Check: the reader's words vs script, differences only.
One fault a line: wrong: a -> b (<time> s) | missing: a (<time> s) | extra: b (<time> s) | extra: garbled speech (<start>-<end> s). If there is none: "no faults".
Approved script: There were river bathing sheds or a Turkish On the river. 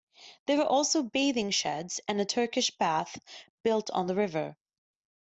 wrong: river -> also (0.6 s)
wrong: or -> and (2.1 s)
extra: Bath built (2.8 s)